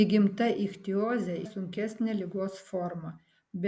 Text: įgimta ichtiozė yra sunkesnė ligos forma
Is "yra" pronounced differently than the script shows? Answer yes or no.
yes